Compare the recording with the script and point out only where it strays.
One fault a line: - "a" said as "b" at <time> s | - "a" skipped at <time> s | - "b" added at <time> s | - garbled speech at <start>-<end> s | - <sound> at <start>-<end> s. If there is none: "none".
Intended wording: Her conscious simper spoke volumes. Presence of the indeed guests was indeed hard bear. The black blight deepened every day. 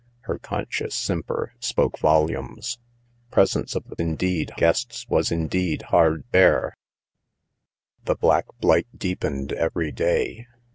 none